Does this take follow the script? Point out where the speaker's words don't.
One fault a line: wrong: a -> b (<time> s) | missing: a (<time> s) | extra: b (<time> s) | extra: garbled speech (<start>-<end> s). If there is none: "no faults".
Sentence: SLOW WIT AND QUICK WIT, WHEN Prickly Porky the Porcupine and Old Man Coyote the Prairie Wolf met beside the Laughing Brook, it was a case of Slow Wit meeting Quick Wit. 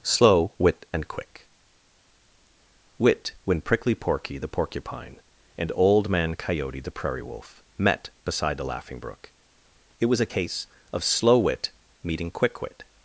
no faults